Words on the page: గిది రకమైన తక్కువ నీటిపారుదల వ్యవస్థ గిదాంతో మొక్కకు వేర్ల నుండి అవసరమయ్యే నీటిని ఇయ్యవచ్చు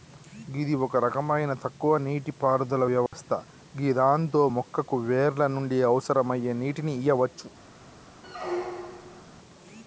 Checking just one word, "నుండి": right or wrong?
right